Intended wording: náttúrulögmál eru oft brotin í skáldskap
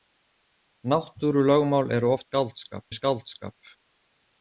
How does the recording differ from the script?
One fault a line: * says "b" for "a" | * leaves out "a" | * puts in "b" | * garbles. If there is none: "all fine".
* says "skáldskap" for "brotin"